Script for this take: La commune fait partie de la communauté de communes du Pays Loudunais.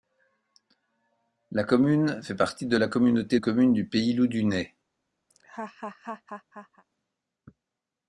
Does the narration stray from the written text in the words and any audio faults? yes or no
yes